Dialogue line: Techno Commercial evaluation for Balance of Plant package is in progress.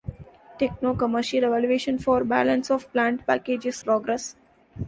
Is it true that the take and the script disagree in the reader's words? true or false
true